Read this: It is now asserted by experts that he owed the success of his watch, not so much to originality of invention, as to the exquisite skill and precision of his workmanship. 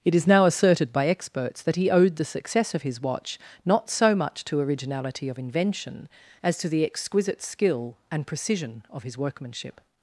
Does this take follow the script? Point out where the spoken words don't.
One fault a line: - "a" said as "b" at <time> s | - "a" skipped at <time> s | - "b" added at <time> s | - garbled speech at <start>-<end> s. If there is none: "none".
none